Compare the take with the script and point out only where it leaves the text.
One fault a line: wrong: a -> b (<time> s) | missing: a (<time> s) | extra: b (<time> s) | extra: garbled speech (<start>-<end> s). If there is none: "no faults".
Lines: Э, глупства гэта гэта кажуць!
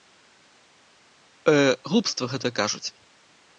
missing: гэта (2.5 s)